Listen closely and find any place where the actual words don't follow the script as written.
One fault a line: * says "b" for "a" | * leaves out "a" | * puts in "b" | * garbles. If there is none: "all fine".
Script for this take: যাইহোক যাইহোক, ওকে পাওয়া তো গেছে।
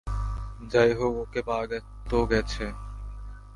* leaves out "যাইহোক"